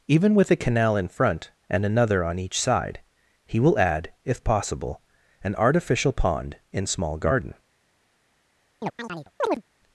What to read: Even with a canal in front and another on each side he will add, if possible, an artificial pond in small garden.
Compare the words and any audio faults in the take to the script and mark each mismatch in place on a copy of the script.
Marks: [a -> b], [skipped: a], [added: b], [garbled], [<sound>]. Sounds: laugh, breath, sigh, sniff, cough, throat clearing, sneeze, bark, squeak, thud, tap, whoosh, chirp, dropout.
Even with a canal in front and another on each side he will add, if possible, an artificial pond in small garden. [chirp]